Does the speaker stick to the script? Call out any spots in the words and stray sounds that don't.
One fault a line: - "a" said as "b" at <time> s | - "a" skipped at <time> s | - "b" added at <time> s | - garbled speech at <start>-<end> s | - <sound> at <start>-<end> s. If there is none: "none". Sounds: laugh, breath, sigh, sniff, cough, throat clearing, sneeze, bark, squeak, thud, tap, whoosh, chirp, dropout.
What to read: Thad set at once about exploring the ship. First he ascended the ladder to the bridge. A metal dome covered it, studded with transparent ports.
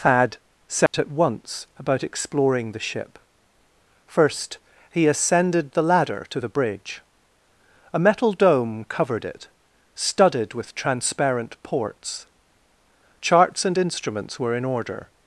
- dropout at 0.9-0.9 s
- "Charts and instruments were in order" added at 13.2 s